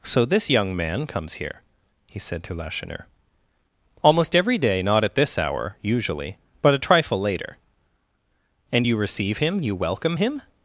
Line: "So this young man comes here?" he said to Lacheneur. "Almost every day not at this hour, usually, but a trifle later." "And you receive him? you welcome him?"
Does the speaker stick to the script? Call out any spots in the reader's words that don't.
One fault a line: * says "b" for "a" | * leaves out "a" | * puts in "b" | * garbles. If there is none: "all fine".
all fine